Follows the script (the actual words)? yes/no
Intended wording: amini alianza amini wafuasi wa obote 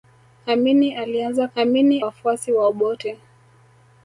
yes